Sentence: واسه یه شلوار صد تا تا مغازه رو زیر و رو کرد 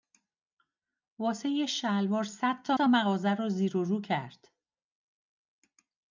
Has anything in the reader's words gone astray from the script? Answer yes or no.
no